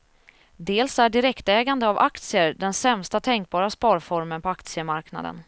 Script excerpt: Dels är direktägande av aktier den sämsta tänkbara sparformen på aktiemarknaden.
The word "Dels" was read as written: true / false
true